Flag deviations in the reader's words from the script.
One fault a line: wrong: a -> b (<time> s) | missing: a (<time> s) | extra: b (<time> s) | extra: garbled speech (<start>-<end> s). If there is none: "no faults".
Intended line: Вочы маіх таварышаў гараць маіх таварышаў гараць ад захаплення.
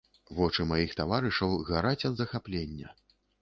missing: маіх таварышаў гараць (2.1 s)